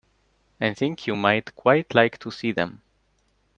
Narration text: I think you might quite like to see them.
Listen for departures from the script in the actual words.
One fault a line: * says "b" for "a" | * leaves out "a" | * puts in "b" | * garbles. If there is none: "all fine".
all fine